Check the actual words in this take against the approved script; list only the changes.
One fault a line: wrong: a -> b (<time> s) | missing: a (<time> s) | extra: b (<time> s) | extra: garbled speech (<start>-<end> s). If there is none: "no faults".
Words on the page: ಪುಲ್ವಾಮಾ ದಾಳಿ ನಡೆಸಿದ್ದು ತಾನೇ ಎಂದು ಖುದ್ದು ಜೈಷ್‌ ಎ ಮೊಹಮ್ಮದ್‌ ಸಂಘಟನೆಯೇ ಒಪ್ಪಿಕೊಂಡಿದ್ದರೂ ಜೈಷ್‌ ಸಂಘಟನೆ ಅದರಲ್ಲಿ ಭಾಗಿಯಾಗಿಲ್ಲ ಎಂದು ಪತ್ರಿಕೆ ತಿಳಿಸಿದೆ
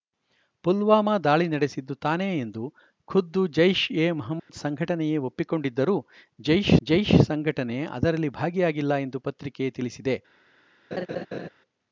extra: ಜೈಷ್ (6.8 s)